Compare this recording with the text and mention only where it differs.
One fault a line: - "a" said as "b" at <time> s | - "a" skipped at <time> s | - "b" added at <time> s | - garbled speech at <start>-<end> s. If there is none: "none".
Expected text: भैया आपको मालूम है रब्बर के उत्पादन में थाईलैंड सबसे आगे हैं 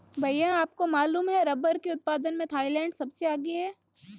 none